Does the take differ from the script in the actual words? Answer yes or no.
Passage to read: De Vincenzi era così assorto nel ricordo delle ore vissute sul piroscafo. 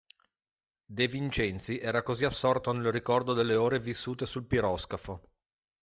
no